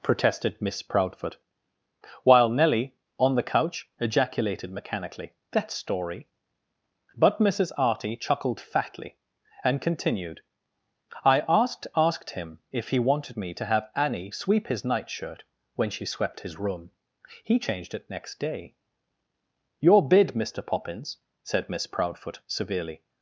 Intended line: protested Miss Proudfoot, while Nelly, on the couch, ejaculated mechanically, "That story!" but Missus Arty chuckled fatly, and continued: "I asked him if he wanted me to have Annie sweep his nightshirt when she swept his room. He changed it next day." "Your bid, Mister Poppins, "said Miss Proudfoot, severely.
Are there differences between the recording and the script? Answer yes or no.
yes